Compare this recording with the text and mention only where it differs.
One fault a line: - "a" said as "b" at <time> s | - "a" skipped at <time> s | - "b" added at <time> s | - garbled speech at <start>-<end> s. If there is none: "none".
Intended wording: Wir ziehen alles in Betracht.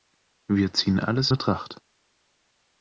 - "in" skipped at 1.3 s